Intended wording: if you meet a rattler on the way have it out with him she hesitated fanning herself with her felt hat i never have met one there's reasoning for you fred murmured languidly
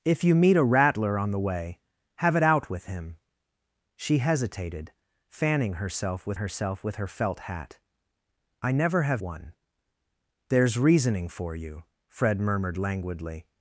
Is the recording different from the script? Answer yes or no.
yes